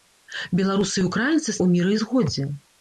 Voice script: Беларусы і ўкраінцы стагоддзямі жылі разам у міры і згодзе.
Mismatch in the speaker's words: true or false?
true